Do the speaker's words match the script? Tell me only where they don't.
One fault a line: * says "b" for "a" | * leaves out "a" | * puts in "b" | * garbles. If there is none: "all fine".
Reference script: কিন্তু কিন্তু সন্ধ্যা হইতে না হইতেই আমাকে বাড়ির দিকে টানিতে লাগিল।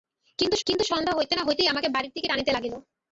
all fine